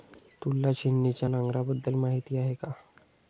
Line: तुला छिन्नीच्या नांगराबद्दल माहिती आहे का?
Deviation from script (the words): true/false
false